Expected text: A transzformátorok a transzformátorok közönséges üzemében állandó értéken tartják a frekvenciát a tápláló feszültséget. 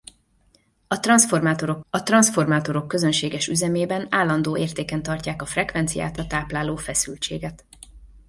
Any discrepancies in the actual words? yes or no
no